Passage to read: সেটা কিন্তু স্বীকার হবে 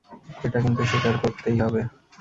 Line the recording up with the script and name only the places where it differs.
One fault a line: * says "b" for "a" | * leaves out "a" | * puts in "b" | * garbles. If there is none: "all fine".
* says "এটা" for "সেটা"
* puts in "করতেই"